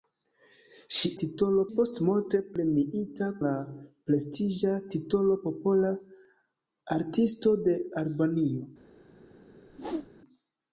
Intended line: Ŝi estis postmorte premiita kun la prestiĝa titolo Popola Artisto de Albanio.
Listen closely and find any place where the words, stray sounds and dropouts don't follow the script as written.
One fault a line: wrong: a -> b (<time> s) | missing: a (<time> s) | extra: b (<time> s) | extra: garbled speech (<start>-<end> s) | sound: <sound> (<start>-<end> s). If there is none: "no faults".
wrong: estis -> titolo (1.2 s)
missing: kun (3.3 s)
sound: whoosh (9.7-10.1 s)